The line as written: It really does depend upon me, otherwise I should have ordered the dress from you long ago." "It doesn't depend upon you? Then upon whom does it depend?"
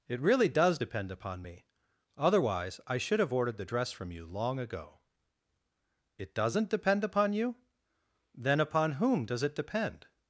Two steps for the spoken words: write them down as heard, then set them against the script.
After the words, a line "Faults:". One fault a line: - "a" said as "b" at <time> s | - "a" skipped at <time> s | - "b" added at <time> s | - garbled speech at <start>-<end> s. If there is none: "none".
It really does depend upon me, otherwise I should have ordered the dress from you long ago." "It doesn't depend upon you? Then upon whom does it depend?"
Faults:
none